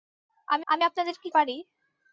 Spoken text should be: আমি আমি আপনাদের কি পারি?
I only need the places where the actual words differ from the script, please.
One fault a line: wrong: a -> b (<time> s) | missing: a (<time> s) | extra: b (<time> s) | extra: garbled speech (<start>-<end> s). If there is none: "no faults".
no faults